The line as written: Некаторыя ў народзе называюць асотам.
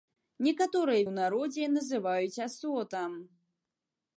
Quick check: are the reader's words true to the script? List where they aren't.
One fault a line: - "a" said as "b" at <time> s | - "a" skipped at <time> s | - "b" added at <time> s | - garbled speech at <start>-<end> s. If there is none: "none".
none